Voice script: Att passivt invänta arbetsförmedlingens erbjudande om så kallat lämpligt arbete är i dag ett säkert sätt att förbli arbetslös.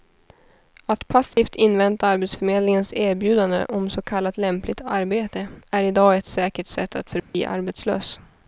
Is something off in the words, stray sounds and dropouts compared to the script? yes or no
yes